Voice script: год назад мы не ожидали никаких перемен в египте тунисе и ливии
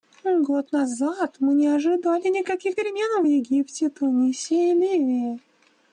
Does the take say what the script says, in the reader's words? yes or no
yes